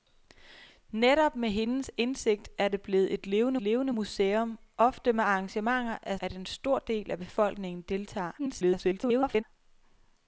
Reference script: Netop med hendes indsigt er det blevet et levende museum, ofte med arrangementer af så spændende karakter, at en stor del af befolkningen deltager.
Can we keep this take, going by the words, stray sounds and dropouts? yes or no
no